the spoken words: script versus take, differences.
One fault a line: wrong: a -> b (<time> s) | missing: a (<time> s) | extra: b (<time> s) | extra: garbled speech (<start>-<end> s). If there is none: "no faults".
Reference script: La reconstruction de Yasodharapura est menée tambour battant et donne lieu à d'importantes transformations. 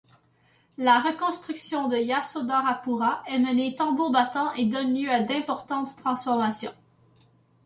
no faults